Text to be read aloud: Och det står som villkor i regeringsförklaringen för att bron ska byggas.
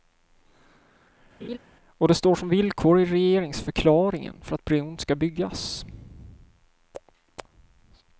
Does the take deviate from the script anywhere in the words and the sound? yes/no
yes